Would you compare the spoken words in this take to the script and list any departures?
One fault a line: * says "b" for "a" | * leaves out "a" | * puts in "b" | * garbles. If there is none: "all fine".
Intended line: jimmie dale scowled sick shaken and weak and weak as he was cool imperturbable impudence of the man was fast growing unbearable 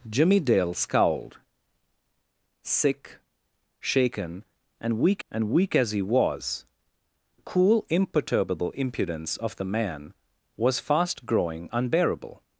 all fine